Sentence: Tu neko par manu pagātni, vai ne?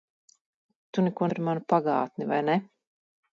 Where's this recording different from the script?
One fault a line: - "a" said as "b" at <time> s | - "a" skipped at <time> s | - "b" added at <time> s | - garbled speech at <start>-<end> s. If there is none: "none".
none